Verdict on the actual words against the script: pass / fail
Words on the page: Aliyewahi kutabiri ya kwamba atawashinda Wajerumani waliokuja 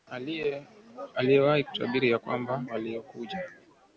fail